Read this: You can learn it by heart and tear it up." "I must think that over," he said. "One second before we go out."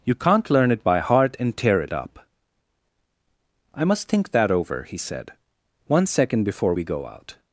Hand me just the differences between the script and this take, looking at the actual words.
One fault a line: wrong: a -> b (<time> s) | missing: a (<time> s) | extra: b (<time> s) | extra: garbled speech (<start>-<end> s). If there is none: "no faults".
wrong: can -> can't (0.1 s)